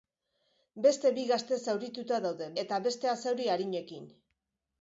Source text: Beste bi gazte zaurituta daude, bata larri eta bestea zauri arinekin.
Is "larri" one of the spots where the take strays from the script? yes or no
yes